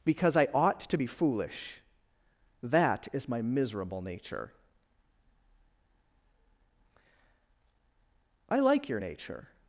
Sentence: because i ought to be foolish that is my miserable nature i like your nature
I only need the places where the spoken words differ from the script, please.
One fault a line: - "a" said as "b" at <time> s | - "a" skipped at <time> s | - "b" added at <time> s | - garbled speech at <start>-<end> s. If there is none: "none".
none